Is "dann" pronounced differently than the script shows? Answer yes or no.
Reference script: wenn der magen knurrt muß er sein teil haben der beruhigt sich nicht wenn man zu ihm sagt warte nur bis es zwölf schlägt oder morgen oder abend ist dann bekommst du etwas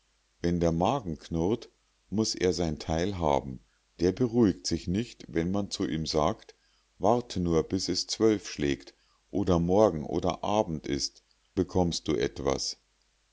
yes